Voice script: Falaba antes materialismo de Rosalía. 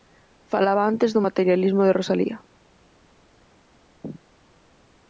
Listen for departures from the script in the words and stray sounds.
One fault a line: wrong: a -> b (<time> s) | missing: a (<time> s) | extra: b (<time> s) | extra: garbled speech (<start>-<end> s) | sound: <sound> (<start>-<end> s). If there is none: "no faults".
extra: do (1.1 s)